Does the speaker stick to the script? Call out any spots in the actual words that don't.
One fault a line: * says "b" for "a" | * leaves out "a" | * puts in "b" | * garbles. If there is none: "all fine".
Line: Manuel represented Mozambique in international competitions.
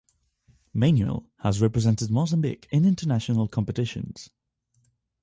* puts in "has"